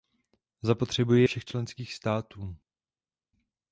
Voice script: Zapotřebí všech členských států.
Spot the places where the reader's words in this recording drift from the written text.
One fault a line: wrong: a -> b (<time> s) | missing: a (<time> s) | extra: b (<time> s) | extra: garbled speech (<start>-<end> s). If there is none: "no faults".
no faults